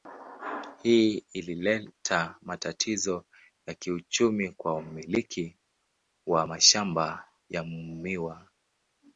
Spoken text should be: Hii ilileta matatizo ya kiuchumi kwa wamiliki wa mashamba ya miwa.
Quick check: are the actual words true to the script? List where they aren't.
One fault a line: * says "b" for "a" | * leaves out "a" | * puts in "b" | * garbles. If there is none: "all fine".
all fine